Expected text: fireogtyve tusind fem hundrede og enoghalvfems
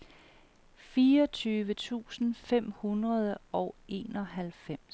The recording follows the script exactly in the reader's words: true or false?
true